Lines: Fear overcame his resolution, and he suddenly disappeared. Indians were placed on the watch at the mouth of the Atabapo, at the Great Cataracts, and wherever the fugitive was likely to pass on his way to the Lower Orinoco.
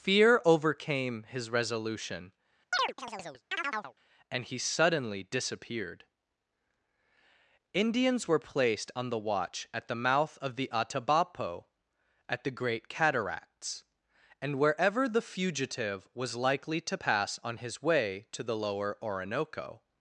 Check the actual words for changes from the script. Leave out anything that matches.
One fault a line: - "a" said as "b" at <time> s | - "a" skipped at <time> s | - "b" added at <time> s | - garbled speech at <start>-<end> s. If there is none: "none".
none